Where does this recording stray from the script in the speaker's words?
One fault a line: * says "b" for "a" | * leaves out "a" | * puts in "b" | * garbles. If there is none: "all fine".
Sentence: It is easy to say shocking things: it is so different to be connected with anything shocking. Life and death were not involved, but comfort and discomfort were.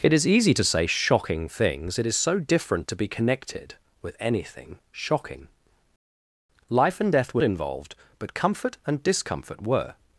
* leaves out "not"